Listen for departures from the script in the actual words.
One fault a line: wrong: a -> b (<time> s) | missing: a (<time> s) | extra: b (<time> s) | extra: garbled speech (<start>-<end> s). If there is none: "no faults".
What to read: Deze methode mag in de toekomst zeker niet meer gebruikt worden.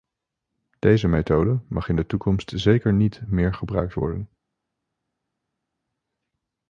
no faults